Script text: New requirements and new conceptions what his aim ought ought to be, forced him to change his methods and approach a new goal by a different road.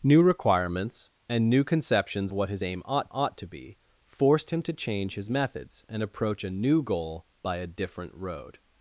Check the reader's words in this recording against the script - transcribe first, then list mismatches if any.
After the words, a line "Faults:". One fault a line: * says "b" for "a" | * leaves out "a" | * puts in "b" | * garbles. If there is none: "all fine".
New requirements and new conceptions what his aim ought ought to be, forced him to change his methods and approach a new goal by a different road.
Faults:
all fine